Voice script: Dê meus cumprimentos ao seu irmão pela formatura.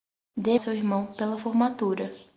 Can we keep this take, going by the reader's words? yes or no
no